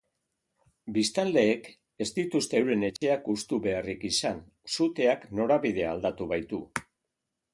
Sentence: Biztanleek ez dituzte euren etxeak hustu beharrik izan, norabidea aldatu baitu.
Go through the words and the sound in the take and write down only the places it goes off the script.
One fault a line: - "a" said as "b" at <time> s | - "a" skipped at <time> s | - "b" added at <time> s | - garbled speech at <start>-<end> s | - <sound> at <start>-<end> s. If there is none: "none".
- dropout at 3.0-3.0 s
- "suteak" added at 4.7 s